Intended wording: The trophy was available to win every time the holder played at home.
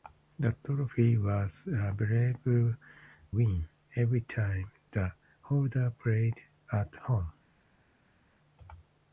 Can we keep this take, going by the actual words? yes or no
no